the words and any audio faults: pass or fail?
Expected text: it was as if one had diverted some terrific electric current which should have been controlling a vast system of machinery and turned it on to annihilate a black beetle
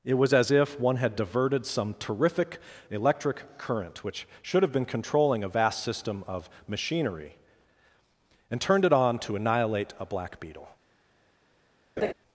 fail